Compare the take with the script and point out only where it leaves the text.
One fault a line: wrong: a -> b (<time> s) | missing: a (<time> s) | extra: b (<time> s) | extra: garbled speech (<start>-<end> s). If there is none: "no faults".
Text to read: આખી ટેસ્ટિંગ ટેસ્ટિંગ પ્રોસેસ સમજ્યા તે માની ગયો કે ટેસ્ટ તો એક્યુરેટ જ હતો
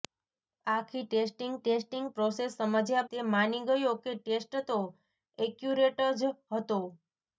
no faults